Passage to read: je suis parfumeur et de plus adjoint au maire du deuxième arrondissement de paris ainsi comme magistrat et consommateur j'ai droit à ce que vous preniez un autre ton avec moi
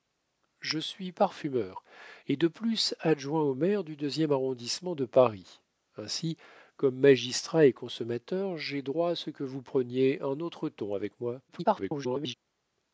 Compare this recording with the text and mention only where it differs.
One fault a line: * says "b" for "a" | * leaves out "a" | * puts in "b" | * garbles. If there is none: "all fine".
* garbles